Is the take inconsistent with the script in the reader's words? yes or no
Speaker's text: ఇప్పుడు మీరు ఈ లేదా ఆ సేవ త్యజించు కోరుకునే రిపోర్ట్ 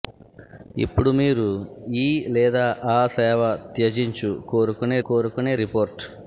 yes